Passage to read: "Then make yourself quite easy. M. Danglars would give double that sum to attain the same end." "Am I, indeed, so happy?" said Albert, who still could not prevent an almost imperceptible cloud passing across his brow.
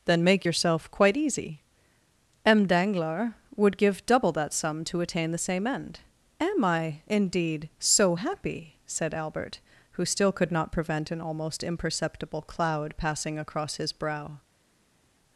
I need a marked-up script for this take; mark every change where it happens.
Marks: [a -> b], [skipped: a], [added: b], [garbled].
"Then make yourself quite easy. M. Danglars would give double that sum to attain the same end." "Am I, indeed, so happy?" said Albert, who still could not prevent an almost imperceptible cloud passing across his brow.